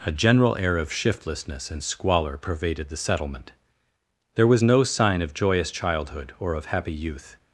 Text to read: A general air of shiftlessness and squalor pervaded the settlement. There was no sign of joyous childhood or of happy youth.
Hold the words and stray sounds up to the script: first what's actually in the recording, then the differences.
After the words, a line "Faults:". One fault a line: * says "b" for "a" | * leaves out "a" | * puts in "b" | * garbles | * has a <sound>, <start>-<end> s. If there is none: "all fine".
A general air of shiftlessness and squalor pervaded the settlement. There was no sign of joyous childhood or of happy youth.
Faults:
all fine